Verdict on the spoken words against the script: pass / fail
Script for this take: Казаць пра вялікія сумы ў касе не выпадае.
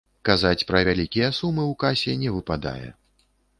pass